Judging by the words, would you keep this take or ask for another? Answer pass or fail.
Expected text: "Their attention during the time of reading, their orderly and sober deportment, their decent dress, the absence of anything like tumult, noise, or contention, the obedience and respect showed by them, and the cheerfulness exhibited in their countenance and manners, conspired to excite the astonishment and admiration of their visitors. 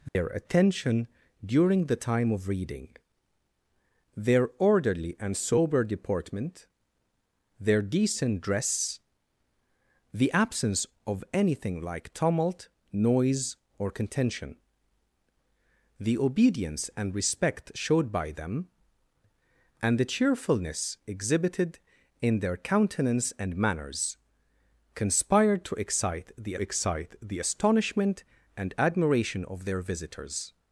fail